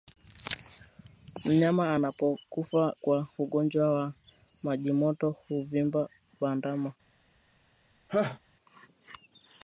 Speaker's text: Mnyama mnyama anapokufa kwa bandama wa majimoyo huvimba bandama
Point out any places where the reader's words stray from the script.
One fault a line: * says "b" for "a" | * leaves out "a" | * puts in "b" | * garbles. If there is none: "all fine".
* leaves out "mnyama"
* says "ugonjwa" for "bandama"